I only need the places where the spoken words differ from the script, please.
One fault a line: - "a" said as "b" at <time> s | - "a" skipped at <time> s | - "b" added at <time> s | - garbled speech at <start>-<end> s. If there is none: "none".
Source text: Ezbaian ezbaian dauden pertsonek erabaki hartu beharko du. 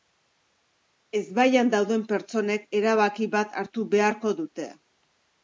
- "ezbaian" skipped at 1.7 s
- "bat" added at 3.4 s
- "du" said as "dute" at 4.4 s